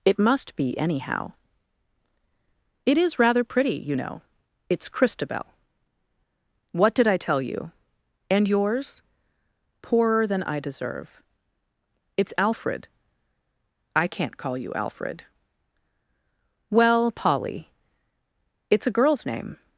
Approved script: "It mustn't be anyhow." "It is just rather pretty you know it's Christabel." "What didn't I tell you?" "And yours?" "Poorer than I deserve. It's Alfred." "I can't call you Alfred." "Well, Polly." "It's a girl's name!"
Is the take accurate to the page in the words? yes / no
no